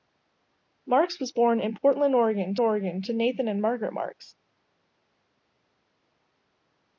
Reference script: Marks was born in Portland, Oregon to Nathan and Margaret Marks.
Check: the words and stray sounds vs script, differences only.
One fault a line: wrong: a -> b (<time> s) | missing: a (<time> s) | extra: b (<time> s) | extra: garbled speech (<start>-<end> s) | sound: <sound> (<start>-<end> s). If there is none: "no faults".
extra: Oregon (2.6 s)